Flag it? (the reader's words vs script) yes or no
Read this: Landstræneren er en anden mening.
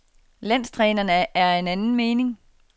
yes